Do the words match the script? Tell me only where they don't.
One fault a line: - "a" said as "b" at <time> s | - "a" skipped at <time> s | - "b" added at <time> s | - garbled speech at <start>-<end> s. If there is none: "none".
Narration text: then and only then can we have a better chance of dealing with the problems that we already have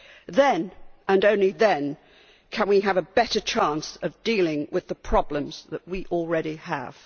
none